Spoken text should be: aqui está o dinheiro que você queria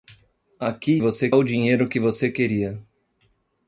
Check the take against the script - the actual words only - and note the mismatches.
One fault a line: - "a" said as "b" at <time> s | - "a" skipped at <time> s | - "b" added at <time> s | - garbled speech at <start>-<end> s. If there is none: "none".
- "está" said as "você" at 1.0 s